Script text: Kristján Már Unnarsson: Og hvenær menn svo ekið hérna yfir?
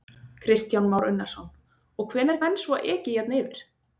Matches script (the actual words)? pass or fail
pass